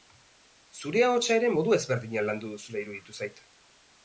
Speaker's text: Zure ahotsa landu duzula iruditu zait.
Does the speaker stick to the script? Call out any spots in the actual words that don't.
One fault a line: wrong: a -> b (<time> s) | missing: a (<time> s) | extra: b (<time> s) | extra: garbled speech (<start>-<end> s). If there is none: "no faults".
extra: ere modu ezberdinean (1.4 s)